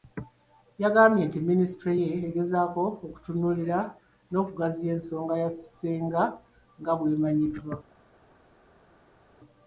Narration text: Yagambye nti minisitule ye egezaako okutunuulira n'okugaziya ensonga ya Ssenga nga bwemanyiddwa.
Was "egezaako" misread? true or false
false